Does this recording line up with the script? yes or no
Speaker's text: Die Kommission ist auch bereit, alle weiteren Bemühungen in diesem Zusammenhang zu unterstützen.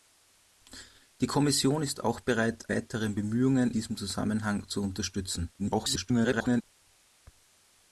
no